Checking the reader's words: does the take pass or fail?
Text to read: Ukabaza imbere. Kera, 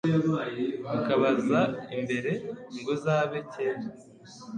fail